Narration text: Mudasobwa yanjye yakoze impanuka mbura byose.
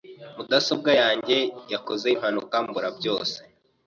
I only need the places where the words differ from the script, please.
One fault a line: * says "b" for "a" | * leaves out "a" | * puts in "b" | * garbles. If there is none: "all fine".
all fine